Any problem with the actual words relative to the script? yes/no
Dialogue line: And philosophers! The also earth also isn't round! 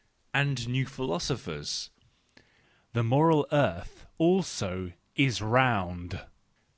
yes